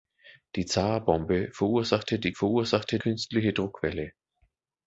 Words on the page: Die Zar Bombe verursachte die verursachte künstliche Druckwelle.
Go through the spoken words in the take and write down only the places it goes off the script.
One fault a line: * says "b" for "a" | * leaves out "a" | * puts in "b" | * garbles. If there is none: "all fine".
all fine